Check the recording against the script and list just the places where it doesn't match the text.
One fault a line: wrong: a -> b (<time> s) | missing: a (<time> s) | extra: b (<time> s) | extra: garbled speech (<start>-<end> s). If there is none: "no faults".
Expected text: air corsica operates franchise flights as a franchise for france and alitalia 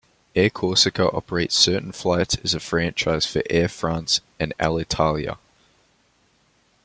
wrong: franchise -> certain (1.6 s)
extra: air (3.5 s)